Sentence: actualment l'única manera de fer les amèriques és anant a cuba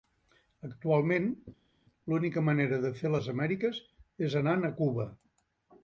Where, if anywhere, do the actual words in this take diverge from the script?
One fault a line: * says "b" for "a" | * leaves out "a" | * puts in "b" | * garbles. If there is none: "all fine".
all fine